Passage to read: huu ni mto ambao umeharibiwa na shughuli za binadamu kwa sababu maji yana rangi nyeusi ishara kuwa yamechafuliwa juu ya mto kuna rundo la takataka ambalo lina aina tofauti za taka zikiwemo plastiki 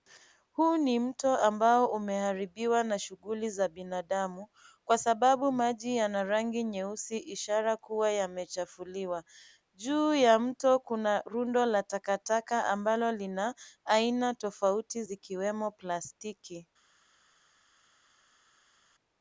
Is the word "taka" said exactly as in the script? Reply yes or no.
no